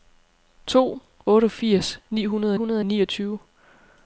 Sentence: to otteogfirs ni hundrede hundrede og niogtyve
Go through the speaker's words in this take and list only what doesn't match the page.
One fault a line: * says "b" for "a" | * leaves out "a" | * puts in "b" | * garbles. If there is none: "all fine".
all fine